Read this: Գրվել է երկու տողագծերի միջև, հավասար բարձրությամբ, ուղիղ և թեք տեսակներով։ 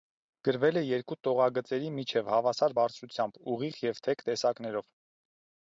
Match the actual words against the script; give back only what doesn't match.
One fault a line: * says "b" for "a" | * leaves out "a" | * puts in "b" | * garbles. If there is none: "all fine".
all fine